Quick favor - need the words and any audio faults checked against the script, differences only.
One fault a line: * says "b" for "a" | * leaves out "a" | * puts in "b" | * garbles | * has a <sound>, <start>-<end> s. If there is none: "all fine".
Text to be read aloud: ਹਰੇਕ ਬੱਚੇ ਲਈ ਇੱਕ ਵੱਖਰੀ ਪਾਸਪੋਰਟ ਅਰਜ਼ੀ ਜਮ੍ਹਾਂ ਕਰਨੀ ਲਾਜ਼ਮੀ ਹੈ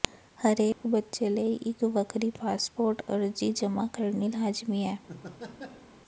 * has a dropout, 0.7-0.8 s
* has a laugh, 5.1-5.9 s